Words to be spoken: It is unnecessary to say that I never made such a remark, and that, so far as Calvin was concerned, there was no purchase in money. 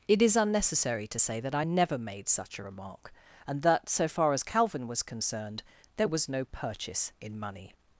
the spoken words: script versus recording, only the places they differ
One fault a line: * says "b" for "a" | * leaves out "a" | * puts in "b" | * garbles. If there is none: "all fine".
all fine